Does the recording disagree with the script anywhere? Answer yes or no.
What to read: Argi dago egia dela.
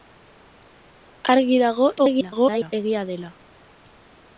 yes